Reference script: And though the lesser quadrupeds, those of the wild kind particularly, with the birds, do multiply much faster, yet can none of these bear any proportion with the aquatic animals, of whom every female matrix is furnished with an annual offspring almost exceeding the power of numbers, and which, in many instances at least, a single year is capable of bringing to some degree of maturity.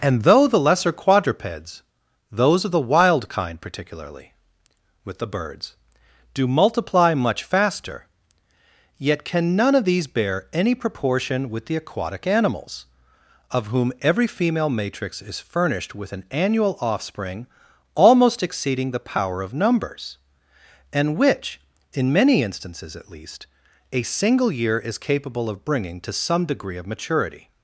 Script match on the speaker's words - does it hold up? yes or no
yes